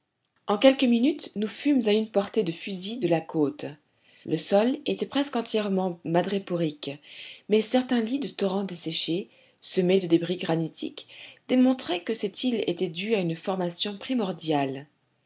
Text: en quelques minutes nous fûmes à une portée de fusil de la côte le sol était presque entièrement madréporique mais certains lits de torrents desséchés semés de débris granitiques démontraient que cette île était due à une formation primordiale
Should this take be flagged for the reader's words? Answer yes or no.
no